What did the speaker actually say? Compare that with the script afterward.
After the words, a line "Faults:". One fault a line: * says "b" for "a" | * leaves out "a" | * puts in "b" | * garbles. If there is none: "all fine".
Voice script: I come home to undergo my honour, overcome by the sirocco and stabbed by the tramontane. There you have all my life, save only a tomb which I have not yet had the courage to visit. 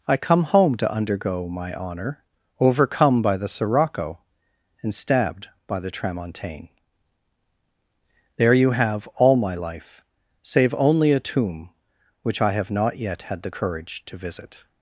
I come home to undergo my honour, overcome by the sirocco and stabbed by the tramontane. There you have all my life, save only a tomb which I have not yet had the courage to visit.
Faults:
all fine